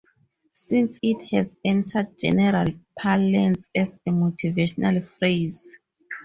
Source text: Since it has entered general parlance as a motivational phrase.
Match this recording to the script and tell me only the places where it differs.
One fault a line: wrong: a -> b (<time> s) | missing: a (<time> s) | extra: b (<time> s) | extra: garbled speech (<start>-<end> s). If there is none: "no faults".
no faults